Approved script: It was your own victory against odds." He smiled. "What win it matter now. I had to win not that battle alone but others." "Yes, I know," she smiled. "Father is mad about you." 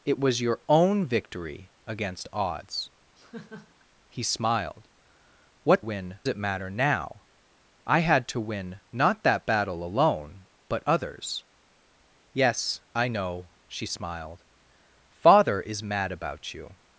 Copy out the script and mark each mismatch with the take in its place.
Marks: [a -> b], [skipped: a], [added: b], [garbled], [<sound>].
It was your own victory against odds." [laugh] He smiled. "What win it matter now. I had to win not that battle alone but others." "Yes, I know," she smiled. "Father is mad about you."